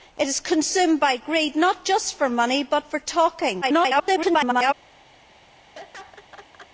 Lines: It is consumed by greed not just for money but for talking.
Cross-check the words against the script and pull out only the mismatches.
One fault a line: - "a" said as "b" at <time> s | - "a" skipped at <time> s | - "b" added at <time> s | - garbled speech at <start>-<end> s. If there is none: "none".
- garbled speech at 3.6-4.7 s